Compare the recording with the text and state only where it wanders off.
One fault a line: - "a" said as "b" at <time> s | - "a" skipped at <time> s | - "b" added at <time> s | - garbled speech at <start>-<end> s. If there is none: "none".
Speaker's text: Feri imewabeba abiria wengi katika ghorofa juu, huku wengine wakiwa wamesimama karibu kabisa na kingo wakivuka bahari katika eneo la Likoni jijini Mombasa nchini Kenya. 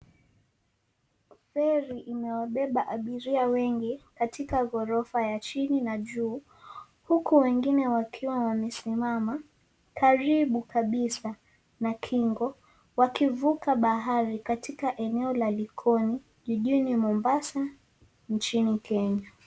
- "ya chini na" added at 5.3 s